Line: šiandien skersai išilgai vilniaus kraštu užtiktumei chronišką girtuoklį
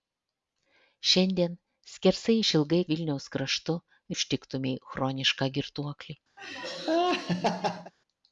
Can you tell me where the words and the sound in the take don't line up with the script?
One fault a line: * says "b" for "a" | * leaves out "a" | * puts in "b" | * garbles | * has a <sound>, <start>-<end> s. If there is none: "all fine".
* has a laugh, 6.4-7.9 s